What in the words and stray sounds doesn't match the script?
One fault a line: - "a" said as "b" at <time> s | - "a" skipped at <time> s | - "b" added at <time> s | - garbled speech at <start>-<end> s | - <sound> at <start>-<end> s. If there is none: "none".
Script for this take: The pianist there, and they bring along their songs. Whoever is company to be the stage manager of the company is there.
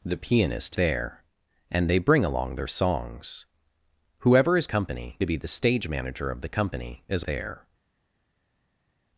none